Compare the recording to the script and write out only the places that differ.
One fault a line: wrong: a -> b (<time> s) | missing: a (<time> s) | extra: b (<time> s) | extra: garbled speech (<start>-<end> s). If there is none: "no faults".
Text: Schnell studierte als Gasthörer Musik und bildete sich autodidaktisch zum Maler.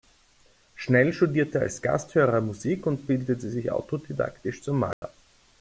no faults